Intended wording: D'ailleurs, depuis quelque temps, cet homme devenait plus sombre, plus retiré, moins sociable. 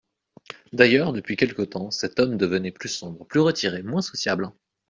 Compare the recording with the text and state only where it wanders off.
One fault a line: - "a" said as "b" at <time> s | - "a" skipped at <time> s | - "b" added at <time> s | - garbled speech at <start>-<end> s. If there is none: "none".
none